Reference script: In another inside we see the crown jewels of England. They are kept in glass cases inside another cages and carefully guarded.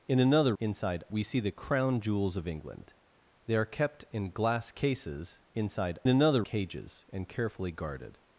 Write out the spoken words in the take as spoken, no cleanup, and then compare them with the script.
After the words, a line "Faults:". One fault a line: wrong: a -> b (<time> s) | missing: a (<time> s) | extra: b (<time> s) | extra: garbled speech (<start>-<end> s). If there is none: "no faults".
In another inside we see the crown jewels of England. They are kept in glass cases inside another cages and carefully guarded.
Faults:
no faults